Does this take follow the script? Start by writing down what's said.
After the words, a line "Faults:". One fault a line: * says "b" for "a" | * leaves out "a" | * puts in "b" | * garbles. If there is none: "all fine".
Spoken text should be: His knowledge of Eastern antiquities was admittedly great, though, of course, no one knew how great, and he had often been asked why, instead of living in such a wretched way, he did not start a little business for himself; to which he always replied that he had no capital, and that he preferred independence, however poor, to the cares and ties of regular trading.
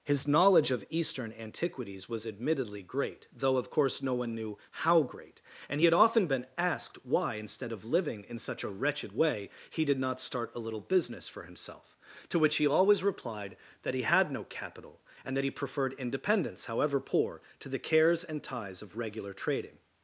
His knowledge of Eastern antiquities was admittedly great, though, of course, no one knew how great, and he had often been asked why, instead of living in such a wretched way, he did not start a little business for himself; to which he always replied that he had no capital, and that he preferred independence, however poor, to the cares and ties of regular trading.
Faults:
all fine